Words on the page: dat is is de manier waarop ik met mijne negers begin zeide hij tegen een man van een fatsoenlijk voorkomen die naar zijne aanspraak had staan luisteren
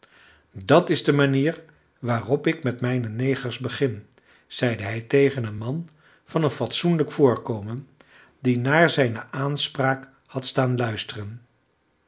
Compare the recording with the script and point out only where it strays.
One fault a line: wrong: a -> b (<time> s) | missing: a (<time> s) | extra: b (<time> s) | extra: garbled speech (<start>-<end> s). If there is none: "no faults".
missing: is (1.0 s)